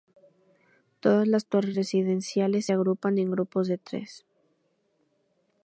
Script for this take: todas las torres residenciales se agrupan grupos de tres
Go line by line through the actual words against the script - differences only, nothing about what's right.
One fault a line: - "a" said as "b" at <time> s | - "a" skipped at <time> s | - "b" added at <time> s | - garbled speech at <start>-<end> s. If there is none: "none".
- "en" added at 3.2 s